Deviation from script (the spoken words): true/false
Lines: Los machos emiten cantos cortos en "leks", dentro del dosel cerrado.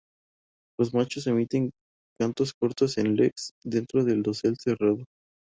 false